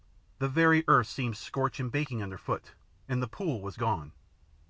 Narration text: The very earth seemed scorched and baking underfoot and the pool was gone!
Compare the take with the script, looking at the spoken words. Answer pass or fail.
pass